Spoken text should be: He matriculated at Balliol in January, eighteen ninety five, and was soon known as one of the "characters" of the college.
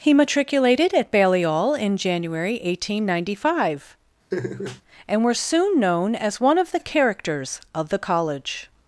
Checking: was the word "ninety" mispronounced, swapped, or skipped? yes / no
no